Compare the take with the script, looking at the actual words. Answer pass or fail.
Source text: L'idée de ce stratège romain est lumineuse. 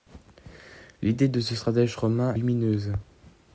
fail